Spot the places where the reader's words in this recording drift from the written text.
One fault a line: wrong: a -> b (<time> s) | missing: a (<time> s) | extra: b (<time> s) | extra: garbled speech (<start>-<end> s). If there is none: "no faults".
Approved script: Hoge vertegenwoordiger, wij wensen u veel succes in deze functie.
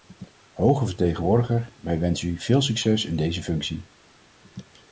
no faults